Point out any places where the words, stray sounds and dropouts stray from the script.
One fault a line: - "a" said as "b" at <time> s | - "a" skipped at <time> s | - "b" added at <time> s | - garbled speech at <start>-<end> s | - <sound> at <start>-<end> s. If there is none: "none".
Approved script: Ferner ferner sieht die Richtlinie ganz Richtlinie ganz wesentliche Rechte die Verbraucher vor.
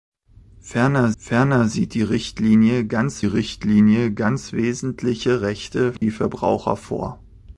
- dropout at 6.0-6.0 s